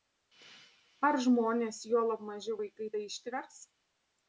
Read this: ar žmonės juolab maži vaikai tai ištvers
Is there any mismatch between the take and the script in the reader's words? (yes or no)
no